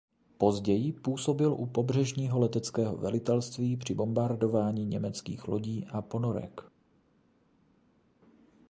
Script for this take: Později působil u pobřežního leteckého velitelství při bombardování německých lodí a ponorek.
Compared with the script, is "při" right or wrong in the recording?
right